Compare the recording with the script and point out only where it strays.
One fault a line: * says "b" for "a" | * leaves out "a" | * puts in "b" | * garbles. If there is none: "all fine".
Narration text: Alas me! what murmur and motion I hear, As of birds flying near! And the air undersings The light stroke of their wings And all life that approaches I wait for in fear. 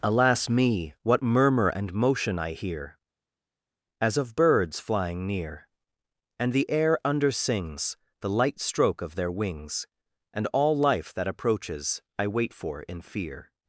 all fine